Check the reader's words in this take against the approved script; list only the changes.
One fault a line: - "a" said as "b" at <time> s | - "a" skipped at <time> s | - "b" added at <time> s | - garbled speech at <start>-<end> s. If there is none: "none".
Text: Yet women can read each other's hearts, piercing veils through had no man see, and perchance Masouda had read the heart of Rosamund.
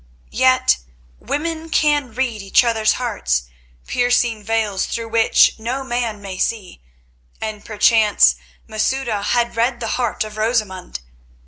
- "had" said as "which" at 5.1 s
- "may" added at 6.2 s